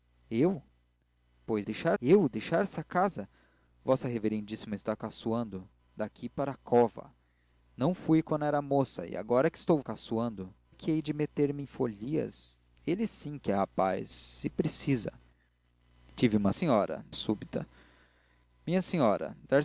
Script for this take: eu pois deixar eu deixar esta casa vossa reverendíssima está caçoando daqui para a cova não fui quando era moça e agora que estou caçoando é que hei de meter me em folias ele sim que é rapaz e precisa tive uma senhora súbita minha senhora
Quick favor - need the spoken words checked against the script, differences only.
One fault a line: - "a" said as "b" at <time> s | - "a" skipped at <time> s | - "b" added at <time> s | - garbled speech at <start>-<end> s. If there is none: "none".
none